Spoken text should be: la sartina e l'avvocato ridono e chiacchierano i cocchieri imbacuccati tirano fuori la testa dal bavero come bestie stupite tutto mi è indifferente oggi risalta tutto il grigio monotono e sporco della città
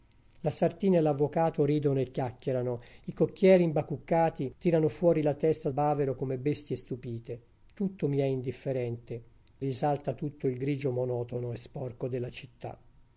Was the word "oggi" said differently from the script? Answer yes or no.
yes